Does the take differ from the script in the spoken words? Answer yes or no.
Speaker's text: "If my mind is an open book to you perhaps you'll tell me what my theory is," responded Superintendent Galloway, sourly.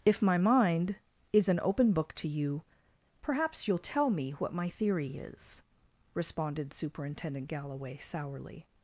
no